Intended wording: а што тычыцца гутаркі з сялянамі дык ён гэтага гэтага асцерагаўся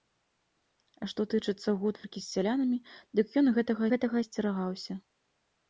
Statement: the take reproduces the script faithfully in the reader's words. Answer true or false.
true